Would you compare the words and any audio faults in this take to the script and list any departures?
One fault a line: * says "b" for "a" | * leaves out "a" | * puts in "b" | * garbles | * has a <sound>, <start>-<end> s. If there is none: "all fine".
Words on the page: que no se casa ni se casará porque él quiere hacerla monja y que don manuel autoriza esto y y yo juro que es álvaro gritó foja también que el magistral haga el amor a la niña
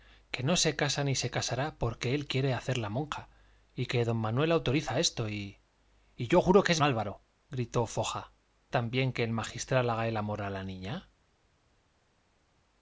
all fine